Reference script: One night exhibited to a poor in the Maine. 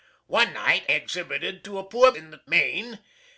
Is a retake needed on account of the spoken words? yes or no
no